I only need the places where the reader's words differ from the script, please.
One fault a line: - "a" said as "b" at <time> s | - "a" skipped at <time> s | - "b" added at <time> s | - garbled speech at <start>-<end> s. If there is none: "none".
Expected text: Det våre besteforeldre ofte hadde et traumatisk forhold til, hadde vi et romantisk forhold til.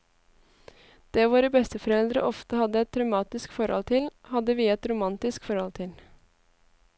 none